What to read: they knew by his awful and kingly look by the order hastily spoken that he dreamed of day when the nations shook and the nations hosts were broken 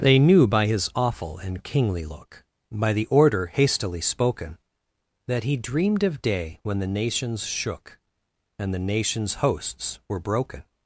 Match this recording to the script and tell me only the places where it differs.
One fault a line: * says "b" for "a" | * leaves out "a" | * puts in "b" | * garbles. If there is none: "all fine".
all fine